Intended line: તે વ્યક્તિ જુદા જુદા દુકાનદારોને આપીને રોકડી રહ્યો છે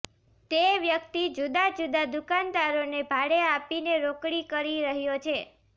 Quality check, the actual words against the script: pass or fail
fail